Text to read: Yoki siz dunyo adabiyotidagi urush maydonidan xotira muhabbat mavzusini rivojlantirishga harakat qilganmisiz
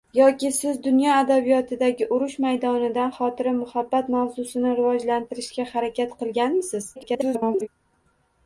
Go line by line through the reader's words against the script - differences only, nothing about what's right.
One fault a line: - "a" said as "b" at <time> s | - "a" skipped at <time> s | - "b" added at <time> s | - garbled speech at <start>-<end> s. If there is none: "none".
- garbled speech at 7.0-7.7 s